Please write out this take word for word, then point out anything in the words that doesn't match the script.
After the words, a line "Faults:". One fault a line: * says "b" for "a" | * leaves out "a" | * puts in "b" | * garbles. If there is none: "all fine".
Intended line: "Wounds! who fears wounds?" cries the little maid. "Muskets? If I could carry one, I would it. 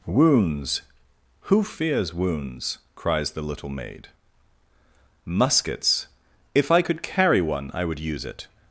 "Wounds! who fears wounds?" cries the little maid. "Muskets? If I could carry one, I would use it.
Faults:
* puts in "use"